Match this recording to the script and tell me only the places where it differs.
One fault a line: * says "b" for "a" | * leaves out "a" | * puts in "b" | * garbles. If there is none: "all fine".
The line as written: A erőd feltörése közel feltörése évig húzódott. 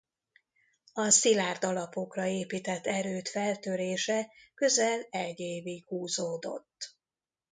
* puts in "szilárd alapokra épített"
* says "egy" for "feltörése"